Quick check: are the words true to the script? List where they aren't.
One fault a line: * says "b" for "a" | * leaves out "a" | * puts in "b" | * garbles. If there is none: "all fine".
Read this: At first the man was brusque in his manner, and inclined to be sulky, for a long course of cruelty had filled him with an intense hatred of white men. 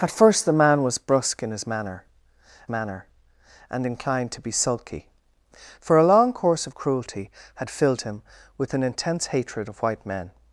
* puts in "manner"